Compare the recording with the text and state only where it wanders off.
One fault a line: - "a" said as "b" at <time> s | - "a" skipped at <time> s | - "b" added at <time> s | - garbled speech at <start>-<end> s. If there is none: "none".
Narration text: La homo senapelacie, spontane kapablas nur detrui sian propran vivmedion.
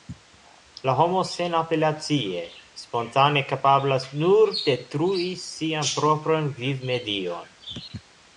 none